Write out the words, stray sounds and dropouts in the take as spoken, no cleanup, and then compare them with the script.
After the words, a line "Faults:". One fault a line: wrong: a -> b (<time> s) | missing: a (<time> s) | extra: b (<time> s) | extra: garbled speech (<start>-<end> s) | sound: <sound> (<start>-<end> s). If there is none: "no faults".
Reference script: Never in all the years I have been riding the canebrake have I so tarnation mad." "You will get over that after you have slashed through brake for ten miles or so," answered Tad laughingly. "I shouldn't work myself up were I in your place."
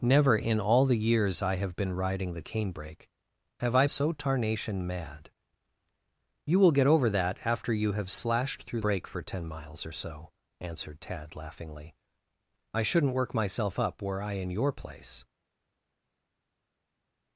Never in all the years I have been riding the canebrake have I so tarnation mad." "You will get over that after you have slashed through brake for ten miles or so," answered Tad laughingly. "I shouldn't work myself up were I in your place."
Faults:
no faults